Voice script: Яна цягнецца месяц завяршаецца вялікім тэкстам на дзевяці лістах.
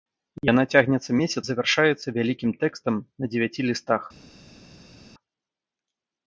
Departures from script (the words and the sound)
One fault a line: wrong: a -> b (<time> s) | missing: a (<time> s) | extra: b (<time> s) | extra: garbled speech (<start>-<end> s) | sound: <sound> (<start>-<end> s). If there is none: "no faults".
no faults